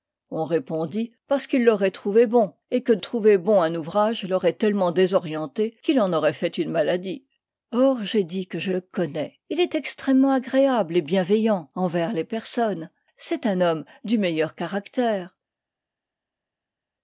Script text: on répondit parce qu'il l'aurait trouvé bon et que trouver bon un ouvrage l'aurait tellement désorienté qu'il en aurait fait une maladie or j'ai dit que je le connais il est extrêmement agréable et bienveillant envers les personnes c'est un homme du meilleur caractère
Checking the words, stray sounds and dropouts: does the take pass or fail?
pass